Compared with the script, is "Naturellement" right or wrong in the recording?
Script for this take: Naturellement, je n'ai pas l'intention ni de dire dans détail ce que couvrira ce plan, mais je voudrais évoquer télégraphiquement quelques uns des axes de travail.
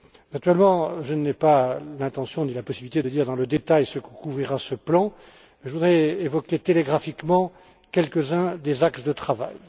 right